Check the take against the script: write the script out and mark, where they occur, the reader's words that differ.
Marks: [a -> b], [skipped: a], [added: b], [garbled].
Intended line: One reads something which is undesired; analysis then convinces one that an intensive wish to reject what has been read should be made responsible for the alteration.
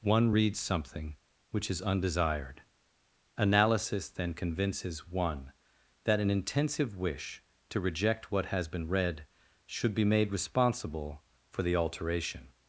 One reads something which is undesired; analysis then convinces one that an intensive wish to reject what has been read should be made responsible for the alteration.